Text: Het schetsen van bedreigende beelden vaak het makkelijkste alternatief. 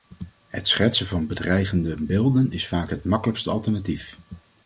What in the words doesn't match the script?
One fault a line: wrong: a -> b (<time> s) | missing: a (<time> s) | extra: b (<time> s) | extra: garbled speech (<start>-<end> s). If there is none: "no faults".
extra: is (2.5 s)